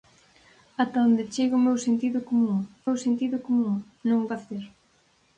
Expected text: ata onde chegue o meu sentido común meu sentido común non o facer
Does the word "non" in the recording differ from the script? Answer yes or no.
no